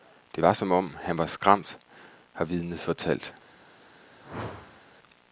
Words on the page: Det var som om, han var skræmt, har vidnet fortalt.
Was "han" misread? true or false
false